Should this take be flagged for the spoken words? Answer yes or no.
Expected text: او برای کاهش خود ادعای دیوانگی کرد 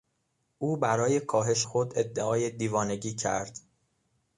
no